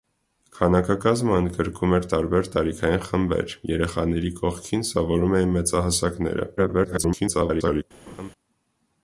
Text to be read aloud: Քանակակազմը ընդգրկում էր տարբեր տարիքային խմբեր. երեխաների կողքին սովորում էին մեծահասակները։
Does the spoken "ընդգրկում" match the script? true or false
true